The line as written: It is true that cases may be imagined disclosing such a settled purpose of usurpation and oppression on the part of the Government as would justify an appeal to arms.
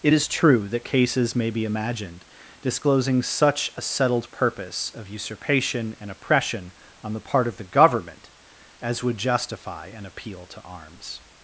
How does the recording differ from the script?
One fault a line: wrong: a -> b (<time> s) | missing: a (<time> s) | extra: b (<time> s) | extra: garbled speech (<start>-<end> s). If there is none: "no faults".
no faults